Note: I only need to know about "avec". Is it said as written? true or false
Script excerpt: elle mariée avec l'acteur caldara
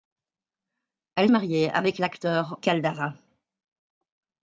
true